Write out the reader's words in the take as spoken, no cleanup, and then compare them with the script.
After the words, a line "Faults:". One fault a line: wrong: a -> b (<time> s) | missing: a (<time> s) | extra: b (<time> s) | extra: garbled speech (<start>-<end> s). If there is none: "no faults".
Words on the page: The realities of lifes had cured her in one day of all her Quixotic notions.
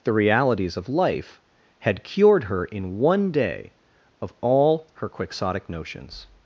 The realities of life had cured her in one day of all her Quixotic notions.
Faults:
wrong: lifes -> life (0.9 s)